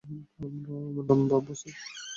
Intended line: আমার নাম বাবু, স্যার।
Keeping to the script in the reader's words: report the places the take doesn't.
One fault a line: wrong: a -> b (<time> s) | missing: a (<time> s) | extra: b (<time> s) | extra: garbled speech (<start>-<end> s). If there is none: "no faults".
no faults